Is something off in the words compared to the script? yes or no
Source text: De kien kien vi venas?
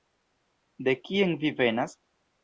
yes